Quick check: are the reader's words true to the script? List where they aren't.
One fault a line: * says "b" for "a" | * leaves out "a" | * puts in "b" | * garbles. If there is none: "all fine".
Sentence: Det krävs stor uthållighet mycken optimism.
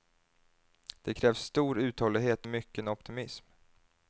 all fine